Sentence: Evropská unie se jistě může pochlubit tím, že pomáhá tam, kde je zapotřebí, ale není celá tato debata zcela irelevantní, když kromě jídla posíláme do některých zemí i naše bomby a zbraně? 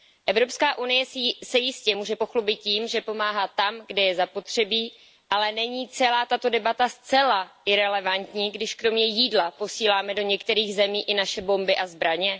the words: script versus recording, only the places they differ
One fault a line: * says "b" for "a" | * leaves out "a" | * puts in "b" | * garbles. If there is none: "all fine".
all fine